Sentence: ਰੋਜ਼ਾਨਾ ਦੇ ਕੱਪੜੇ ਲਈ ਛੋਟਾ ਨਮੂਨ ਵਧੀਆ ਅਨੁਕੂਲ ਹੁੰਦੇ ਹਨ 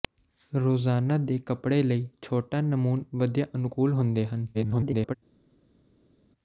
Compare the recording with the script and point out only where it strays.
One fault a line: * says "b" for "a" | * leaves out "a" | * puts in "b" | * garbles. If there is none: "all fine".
* garbles